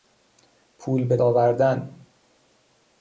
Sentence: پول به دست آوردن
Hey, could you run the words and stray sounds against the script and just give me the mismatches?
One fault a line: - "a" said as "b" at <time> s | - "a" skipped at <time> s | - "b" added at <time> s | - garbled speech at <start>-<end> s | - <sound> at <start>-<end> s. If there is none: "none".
- "دست" skipped at 1.2 s